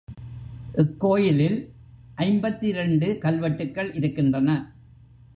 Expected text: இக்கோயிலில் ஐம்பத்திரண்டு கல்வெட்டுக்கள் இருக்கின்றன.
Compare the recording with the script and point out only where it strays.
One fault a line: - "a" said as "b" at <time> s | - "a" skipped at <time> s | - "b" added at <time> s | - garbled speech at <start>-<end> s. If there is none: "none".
none